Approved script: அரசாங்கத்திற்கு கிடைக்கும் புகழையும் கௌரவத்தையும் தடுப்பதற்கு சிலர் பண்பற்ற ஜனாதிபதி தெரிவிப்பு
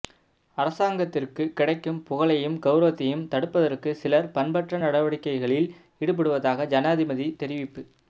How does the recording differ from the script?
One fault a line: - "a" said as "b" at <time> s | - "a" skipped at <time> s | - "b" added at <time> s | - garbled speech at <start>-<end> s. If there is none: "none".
- "நடவடிக்கைகளில் ஈடுபடுவதாக" added at 4.8 s